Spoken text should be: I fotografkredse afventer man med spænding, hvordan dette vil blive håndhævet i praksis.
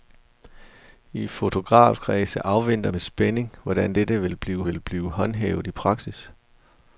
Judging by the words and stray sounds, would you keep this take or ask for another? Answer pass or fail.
fail